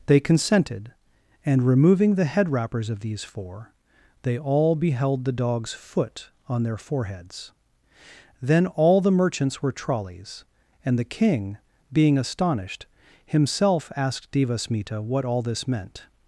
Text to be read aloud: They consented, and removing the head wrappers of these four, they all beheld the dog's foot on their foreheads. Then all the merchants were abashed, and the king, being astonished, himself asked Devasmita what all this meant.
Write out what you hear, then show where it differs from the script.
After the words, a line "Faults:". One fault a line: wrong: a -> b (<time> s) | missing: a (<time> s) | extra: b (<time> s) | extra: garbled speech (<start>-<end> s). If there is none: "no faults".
They consented, and removing the head wrappers of these four, they all beheld the dog's foot on their foreheads. Then all the merchants were trolleys, and the king, being astonished, himself asked Devasmita what all this meant.
Faults:
wrong: abashed -> trolleys (9.7 s)